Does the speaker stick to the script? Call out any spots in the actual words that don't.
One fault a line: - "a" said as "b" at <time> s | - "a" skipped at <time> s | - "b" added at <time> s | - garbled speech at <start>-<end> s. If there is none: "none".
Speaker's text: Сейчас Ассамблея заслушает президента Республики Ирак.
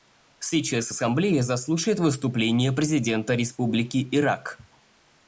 - "выступление" added at 2.0 s